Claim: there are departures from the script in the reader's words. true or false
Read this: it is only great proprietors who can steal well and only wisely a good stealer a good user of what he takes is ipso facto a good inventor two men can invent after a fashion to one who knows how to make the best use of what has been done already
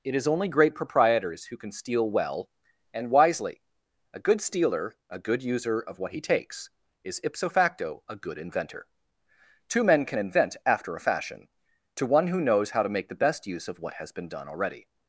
true